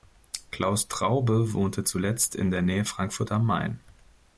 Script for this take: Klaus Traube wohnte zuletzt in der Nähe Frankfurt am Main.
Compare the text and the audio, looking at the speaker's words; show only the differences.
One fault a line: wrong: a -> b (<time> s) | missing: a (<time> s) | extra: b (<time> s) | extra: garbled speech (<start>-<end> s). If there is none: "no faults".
no faults